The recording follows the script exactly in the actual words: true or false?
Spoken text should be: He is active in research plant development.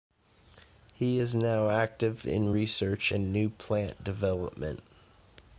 false